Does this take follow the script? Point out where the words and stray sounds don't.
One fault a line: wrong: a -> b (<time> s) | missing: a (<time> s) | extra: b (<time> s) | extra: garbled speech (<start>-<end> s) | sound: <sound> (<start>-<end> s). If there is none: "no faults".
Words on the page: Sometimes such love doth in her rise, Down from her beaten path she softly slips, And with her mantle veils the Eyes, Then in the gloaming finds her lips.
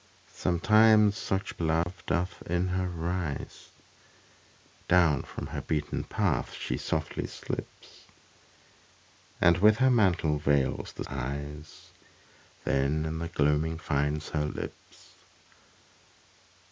sound: dropout (1.8-1.9 s)